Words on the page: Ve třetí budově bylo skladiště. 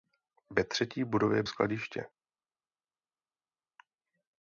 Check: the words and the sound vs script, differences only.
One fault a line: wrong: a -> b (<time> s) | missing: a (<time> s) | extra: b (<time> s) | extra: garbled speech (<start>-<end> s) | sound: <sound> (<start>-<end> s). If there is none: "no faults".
missing: bylo (1.4 s)